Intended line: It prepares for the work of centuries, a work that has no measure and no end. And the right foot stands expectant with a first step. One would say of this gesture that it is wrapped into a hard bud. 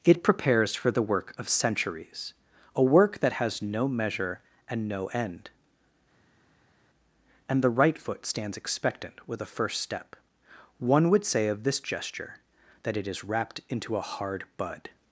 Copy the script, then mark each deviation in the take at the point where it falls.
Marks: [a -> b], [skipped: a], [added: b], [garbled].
It prepares for the work of centuries, a work that has no measure and no end. And the right foot stands expectant with a first step. One would say of this gesture that it is wrapped into a hard bud.